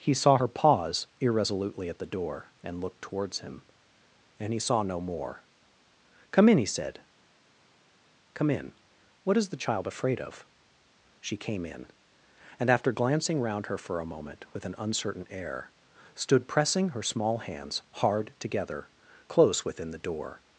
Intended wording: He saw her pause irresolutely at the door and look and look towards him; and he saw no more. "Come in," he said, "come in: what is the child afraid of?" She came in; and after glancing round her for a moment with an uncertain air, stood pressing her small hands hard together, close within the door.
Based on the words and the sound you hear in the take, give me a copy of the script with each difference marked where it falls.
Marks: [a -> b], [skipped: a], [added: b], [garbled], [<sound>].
He saw her pause irresolutely at the door and look [skipped: and look] towards him; and he saw no more. "Come in," he said, "come in: what is the child afraid of?" She came in; and after glancing round her for a moment with an uncertain air, stood pressing her small hands hard together, close within the door.